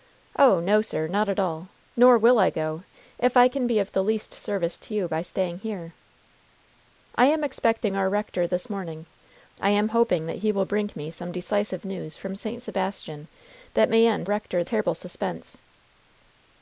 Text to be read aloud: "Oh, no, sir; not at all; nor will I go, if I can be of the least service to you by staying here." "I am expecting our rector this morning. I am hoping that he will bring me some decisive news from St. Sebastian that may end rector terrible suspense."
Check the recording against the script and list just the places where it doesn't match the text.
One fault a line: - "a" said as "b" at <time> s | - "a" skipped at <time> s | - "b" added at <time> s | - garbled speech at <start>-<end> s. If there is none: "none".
none